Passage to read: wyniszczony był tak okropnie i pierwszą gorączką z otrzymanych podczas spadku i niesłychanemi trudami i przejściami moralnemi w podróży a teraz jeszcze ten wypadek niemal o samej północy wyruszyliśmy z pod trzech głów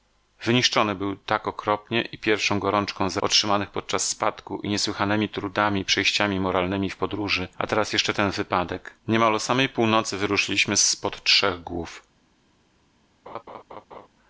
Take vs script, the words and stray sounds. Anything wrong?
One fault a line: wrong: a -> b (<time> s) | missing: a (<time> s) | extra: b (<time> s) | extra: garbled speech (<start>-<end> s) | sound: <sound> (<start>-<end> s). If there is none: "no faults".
sound: laugh (13.3-14.1 s)